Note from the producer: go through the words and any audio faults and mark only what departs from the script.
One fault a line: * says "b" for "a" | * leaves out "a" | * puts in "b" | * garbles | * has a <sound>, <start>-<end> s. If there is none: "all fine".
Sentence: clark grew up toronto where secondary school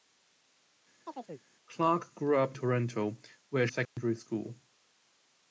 * has a chirp, 1.1-1.5 s
* has a dropout, 3.9-4.0 s